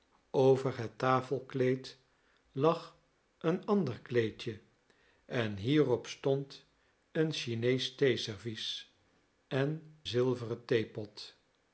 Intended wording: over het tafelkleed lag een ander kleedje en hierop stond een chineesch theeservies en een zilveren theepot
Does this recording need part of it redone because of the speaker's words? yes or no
yes